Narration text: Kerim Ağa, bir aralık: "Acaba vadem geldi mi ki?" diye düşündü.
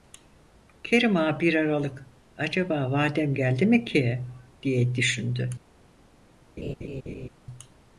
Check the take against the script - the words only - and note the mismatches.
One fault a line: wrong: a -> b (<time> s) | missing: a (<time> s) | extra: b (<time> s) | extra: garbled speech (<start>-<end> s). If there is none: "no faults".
no faults